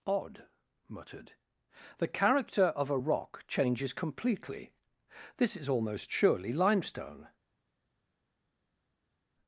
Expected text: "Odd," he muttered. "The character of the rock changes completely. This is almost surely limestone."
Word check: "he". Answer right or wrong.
wrong